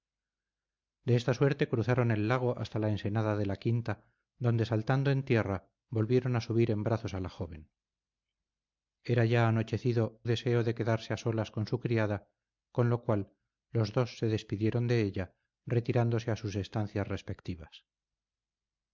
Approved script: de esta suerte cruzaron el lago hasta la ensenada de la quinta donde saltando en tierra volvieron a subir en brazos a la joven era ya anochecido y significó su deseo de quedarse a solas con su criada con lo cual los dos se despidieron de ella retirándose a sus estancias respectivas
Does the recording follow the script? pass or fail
fail